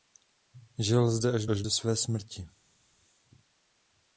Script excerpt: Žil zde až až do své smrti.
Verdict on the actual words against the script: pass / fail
pass